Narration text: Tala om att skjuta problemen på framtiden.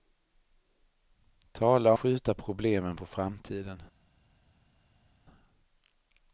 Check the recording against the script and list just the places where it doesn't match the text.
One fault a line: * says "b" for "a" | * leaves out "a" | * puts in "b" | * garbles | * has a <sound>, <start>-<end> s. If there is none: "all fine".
* leaves out "om att"